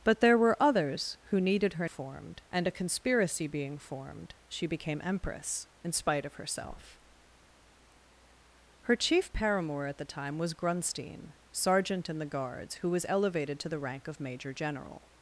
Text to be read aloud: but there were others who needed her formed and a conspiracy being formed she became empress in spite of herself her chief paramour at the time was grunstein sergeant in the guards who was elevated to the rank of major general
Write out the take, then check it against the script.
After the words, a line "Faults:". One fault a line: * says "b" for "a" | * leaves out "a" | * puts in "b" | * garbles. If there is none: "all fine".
but there were others who needed her formed and a conspiracy being formed she became empress in spite of herself her chief paramour at the time was grunstein sergeant in the guards who was elevated to the rank of major general
Faults:
all fine